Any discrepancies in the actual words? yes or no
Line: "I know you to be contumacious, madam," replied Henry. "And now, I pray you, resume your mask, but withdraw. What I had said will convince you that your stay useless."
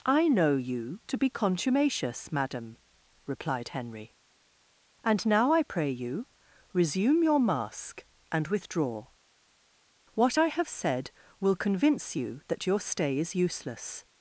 yes